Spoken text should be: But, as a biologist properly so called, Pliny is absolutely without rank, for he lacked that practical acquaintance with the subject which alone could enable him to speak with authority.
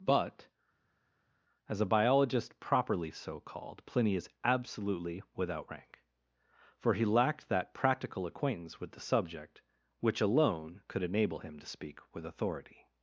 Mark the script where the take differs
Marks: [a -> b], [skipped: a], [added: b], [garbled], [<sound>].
But, as a biologist properly so called, Pliny is absolutely without rank, for he lacked that practical acquaintance with the subject which alone could enable him to speak with authority.